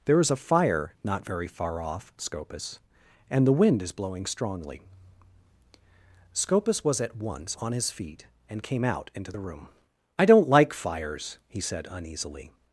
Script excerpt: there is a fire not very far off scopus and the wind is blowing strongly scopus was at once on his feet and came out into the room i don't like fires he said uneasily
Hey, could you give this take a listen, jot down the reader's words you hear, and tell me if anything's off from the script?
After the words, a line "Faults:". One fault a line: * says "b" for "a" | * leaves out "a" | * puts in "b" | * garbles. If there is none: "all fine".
there is a fire not very far off scopus and the wind is blowing strongly scopus was at once on his feet and came out into the room i don't like fires he said uneasily
Faults:
all fine